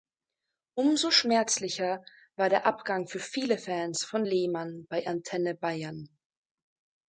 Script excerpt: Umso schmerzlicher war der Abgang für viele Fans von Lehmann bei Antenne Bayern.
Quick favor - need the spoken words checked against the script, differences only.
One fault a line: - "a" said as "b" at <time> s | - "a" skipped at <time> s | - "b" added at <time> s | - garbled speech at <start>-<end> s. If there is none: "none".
none